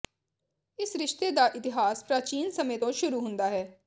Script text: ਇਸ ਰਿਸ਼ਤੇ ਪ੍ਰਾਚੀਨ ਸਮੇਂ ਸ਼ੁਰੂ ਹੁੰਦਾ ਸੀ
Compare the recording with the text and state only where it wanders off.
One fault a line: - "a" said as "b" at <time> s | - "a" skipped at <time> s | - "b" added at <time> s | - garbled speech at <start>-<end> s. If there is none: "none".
- "ਦਾ ਇਤਿਹਾਸ" added at 1.3 s
- "ਤੋਂ" added at 2.8 s
- "ਸੀ" said as "ਹੈ" at 3.5 s